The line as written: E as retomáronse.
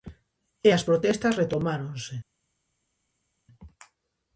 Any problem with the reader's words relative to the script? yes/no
yes